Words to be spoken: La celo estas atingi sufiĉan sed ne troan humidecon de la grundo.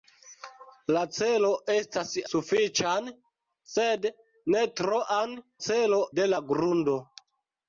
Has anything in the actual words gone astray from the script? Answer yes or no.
yes